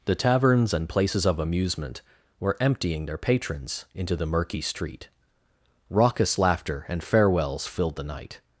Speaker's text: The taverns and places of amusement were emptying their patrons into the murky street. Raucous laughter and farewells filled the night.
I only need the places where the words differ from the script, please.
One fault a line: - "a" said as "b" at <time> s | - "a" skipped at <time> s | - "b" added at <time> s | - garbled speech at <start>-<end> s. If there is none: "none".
none